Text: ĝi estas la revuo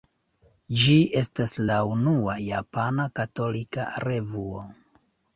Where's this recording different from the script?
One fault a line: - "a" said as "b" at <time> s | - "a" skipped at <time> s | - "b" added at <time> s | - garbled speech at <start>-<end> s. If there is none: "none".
- "unua japana katolika" added at 1.9 s